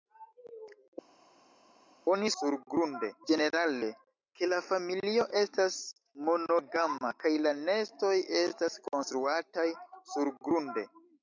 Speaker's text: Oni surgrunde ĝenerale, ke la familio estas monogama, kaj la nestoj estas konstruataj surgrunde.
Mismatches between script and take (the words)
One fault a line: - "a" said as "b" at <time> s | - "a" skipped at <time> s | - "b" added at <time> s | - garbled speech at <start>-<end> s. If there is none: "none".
none